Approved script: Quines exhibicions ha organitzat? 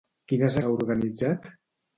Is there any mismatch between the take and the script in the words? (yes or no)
yes